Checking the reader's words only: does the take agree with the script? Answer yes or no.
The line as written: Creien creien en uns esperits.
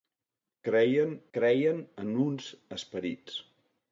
yes